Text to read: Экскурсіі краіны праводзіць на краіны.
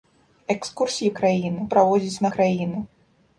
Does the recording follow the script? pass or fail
pass